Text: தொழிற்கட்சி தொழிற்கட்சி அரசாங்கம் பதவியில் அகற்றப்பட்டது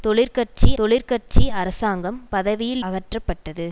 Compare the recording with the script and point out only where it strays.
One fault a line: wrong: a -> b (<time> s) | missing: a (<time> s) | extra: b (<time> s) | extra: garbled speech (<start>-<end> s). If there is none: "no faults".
no faults